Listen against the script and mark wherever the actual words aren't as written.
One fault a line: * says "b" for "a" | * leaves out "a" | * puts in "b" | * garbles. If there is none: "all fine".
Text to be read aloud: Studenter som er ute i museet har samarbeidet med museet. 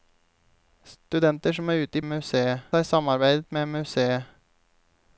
all fine